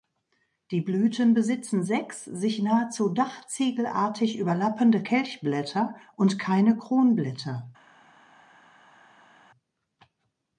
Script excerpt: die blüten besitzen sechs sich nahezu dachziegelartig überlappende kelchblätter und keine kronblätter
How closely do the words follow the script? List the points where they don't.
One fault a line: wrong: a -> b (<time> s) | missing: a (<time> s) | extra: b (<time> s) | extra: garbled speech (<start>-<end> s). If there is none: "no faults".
no faults